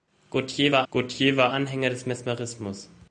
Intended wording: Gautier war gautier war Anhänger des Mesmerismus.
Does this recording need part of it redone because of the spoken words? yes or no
no